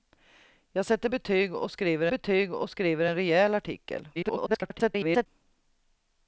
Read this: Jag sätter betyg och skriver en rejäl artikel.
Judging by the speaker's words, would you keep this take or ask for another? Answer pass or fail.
fail